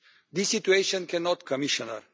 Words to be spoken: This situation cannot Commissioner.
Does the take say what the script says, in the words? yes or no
yes